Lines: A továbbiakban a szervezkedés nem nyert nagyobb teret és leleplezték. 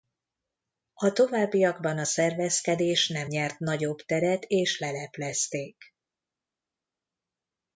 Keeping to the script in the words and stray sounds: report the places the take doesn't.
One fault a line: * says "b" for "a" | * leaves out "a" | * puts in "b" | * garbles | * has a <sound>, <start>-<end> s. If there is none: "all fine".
all fine